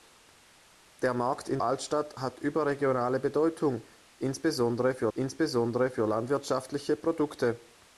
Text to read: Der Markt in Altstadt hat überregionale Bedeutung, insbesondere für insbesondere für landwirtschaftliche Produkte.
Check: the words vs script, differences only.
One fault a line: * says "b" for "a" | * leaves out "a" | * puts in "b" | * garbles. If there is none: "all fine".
all fine